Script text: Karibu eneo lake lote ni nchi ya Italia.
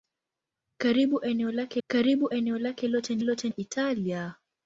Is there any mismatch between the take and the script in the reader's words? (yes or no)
yes